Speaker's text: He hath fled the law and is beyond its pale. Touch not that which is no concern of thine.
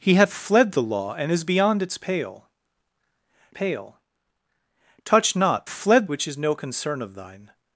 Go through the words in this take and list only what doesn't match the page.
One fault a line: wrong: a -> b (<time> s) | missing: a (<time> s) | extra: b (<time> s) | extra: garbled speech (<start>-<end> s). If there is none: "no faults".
extra: pale (3.5 s)
wrong: that -> fled (5.7 s)